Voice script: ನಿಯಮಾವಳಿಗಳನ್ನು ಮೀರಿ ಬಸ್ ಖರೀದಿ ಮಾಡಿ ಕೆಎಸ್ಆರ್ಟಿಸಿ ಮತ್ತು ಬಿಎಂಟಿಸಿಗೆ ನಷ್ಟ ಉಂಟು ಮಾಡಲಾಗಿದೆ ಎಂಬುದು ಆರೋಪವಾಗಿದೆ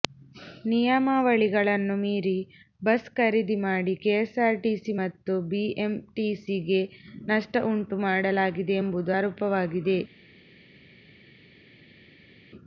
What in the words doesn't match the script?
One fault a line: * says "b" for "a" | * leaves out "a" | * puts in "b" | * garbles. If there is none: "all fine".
all fine